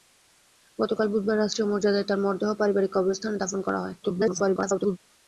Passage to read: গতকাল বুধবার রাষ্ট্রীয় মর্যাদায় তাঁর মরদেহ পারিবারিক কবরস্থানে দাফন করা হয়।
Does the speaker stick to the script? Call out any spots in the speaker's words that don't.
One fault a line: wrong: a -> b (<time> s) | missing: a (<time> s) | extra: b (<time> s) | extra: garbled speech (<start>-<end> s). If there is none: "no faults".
extra: garbled speech (4.0-5.0 s)